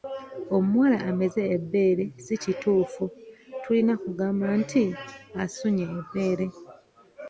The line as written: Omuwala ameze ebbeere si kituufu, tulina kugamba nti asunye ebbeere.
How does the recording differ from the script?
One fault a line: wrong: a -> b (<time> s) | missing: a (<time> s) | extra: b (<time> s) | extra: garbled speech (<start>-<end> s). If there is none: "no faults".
no faults